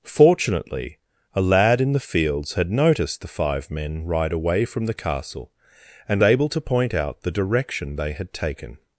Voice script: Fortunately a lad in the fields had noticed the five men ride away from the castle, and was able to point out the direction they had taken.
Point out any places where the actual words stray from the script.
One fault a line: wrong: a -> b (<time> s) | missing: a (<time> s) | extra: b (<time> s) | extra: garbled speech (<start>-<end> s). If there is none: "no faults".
missing: was (6.2 s)